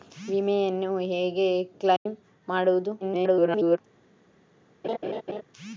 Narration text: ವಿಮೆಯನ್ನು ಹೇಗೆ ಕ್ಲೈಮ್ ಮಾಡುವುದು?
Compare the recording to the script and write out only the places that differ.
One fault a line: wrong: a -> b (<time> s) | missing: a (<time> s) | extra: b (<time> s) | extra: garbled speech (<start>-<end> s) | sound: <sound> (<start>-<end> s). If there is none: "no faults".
sound: dropout (2.0-2.1 s)
extra: garbled speech (3.0-3.8 s)
sound: laugh (4.8-5.4 s)